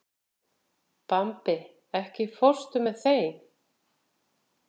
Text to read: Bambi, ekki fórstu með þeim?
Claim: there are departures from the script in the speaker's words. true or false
false